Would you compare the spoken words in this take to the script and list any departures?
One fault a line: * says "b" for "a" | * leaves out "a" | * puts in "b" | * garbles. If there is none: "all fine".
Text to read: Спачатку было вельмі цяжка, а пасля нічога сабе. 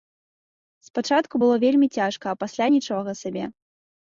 all fine